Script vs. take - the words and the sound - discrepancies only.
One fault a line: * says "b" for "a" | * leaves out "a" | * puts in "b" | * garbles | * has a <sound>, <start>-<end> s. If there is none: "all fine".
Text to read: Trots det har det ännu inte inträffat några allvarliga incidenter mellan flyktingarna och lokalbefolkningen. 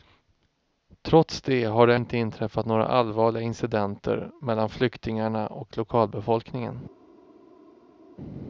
* leaves out "ännu"